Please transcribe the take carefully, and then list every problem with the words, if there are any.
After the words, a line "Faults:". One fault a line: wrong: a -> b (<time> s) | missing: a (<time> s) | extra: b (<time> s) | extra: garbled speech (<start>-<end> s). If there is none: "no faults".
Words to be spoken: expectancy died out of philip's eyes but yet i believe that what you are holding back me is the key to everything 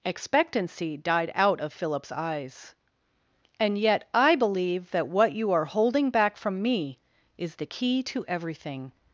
expectancy died out of philip's eyes and yet i believe that what you are holding back from me is the key to everything
Faults:
wrong: but -> and (3.6 s)
extra: from (6.4 s)